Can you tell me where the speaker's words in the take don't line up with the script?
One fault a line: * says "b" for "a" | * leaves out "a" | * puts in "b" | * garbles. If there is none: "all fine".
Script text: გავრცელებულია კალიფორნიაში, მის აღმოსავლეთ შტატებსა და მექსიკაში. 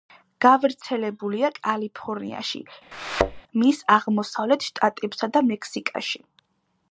all fine